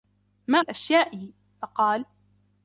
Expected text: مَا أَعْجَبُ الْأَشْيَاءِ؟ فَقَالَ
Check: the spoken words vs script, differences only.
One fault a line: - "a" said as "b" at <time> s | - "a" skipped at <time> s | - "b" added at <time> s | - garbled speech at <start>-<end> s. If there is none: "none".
- "أَعْجَبُ" skipped at 0.6 s